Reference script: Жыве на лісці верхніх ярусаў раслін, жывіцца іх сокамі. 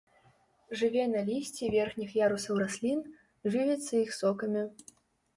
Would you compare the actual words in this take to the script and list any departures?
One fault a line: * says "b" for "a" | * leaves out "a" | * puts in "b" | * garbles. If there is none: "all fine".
all fine